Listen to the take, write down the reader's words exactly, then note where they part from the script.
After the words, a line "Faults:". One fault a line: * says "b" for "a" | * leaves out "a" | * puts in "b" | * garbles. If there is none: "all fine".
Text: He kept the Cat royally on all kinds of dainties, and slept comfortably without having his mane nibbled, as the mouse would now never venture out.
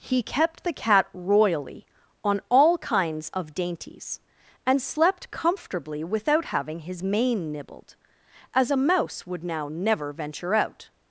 He kept the Cat royally on all kinds of dainties, and slept comfortably without having his mane nibbled, as a mouse would now never venture out.
Faults:
* says "a" for "the"